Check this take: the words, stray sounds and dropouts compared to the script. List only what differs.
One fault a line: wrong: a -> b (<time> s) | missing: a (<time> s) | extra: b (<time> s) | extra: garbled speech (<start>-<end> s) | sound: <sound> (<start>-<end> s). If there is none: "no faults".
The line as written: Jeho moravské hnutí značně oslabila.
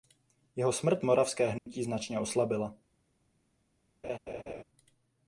extra: smrt (0.7 s)
sound: dropout (1.6-1.7 s)
sound: laugh (4.0-4.6 s)